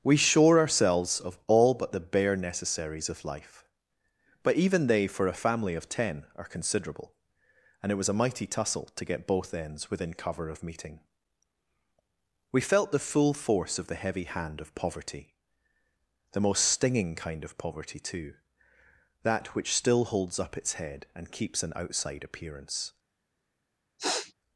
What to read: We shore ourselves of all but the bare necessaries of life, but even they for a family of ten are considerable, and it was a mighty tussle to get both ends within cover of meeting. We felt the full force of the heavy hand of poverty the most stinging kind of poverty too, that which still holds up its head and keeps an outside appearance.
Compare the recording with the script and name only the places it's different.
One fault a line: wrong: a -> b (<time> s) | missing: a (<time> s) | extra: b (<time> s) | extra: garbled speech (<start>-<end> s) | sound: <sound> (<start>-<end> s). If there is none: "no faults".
sound: sniff (24.0-24.3 s)